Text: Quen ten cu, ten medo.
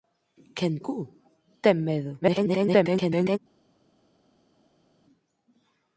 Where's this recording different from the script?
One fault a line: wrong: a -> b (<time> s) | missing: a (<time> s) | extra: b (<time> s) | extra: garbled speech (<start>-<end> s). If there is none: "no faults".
missing: ten (0.7 s)
extra: garbled speech (2.2-3.4 s)